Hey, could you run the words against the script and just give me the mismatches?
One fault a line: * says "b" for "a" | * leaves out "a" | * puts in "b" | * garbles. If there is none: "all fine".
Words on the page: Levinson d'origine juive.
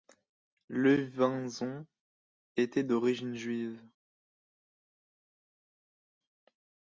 * puts in "était"